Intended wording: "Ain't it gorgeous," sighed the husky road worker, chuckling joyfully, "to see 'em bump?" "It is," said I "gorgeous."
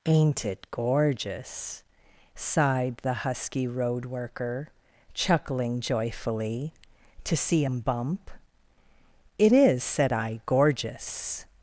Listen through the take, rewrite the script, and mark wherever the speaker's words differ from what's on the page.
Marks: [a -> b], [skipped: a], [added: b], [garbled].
"Ain't it gorgeous," sighed the husky road worker, chuckling joyfully, "to see 'em bump?" "It is," said I "gorgeous."